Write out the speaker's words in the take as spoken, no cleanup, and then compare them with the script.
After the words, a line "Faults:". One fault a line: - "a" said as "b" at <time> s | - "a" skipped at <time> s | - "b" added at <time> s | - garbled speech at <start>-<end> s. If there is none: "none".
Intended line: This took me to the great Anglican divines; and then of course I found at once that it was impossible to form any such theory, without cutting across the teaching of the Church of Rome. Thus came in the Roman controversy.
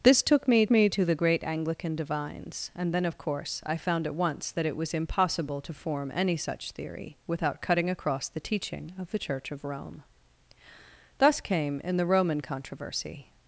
This took me me to the great Anglican divines; and then of course I found at once that it was impossible to form any such theory, without cutting across the teaching of the Church of Rome. Thus came in the Roman controversy.
Faults:
- "me" added at 0.7 s